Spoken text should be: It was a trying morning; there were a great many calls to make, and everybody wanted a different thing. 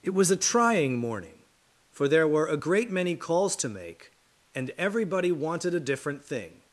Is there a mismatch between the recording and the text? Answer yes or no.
yes